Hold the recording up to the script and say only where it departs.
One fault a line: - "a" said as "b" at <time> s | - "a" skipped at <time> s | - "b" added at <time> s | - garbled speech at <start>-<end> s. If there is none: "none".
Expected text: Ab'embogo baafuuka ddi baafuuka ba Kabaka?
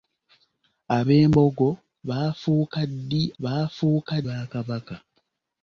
none